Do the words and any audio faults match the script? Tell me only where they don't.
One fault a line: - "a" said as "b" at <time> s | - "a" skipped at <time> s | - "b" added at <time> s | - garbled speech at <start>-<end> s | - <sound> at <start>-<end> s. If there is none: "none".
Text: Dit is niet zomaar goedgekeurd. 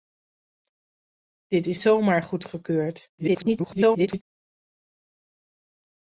- "niet" skipped at 1.8 s
- garbled speech at 3.2-4.2 s